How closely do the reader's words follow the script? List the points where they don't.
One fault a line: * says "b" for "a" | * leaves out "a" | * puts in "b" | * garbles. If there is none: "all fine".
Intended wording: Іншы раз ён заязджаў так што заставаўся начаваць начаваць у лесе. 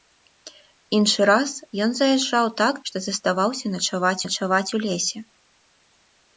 all fine